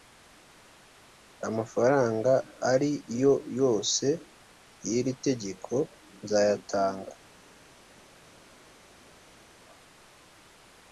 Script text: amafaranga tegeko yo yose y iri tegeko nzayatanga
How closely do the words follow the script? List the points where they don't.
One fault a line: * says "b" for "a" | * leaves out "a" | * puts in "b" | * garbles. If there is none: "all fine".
* says "ari" for "tegeko"